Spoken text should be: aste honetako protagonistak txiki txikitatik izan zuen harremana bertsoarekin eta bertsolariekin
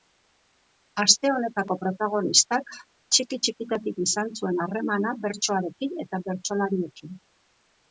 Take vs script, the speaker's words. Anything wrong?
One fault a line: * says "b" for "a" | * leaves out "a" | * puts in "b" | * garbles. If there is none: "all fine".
all fine